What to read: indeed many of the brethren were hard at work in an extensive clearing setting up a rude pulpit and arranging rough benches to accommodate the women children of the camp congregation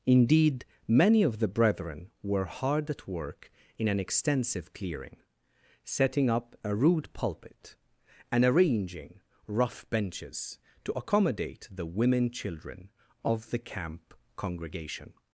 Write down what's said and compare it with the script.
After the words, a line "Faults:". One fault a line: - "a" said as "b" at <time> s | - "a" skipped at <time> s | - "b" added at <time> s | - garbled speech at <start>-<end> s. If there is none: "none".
indeed many of the brethren were hard at work in an extensive clearing setting up a rude pulpit and arranging rough benches to accommodate the women children of the camp congregation
Faults:
none